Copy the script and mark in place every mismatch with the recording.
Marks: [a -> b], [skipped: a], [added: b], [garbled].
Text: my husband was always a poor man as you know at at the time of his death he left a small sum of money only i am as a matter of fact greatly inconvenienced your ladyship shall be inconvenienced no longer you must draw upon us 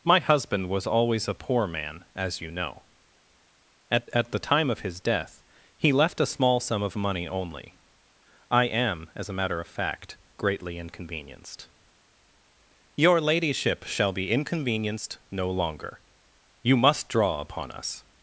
my husband was always a poor man as you know at at the time of his death he left a small sum of money only i am as a matter of fact greatly inconvenienced your ladyship shall be inconvenienced no longer you must draw upon us